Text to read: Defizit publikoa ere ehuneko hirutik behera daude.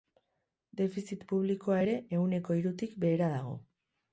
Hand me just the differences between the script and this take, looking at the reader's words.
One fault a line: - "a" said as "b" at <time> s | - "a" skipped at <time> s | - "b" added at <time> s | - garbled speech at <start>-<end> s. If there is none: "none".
- "daude" said as "dago" at 3.4 s